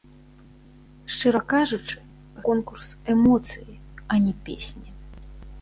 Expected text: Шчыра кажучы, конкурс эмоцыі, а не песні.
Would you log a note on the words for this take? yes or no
no